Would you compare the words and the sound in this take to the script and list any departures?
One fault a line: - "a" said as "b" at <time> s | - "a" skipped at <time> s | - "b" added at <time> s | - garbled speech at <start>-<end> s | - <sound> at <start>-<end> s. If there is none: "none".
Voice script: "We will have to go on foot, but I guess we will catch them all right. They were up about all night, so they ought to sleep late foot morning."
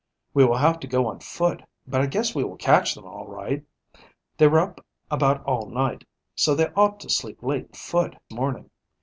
none